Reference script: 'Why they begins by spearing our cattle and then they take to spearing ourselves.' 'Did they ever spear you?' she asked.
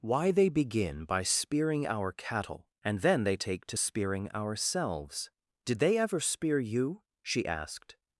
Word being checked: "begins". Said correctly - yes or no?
no